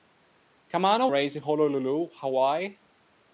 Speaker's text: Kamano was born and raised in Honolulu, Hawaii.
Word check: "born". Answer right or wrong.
wrong